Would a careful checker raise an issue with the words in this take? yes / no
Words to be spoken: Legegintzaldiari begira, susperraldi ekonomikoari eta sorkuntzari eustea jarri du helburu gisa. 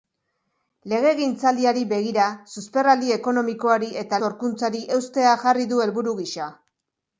no